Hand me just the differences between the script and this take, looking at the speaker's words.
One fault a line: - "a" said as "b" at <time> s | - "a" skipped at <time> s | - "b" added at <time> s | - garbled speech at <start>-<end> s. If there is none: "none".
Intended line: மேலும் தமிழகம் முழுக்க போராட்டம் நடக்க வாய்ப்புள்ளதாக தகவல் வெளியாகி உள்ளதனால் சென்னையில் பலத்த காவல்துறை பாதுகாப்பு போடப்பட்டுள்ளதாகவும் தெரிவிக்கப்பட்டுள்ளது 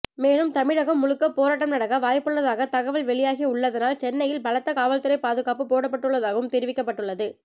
none